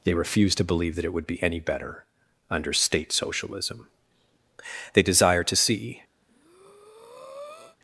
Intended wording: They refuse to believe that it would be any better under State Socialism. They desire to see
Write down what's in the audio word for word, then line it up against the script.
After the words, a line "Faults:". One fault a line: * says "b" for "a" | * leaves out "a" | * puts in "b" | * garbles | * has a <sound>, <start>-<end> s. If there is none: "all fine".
They refuse to believe that it would be any better under State Socialism. They desire to see
Faults:
* has a breath, 6.2-7.8 s